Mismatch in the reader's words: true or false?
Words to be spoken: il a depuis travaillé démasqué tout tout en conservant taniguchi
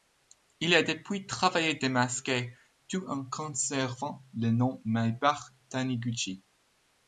true